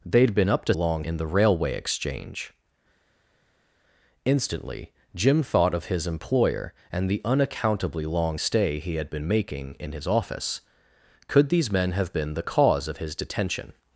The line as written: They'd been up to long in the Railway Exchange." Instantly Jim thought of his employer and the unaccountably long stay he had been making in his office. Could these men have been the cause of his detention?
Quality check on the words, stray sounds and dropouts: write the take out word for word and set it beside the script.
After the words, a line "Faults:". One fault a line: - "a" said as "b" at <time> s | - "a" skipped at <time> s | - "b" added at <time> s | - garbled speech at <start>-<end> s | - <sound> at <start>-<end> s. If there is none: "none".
They'd been up to long in the Railway Exchange." Instantly Jim thought of his employer and the unaccountably long stay he had been making in his office. Could these men have been the cause of his detention?
Faults:
none